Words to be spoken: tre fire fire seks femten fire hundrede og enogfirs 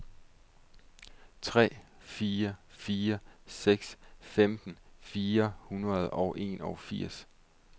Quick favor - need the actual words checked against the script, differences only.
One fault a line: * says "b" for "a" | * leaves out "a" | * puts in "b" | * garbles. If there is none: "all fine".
all fine